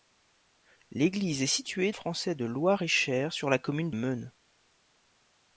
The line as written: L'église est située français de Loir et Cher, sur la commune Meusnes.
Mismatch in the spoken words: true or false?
false